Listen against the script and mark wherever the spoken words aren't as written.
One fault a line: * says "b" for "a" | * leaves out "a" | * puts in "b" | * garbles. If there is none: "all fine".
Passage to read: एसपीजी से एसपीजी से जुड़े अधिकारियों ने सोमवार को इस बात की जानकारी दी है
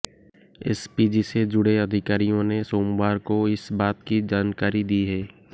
* leaves out "एसपीजी से"